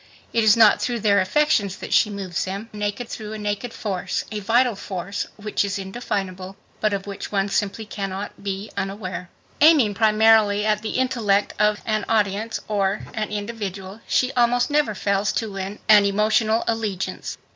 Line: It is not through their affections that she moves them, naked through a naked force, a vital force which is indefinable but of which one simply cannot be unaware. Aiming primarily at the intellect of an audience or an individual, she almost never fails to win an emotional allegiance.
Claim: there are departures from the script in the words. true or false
false